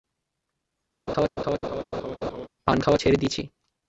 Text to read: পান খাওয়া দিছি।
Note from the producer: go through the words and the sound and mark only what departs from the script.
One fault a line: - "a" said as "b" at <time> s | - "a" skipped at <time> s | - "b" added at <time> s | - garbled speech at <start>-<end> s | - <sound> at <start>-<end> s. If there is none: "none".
- laugh at 1.1-2.5 s
- "ছেড়ে" added at 3.0 s